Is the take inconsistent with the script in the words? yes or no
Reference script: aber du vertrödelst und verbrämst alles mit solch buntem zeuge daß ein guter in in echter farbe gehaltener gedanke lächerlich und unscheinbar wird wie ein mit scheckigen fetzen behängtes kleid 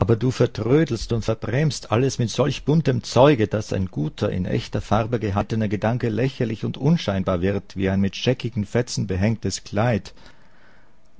yes